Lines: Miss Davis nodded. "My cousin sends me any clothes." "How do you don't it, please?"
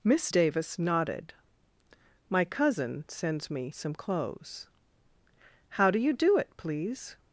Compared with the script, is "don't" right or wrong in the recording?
wrong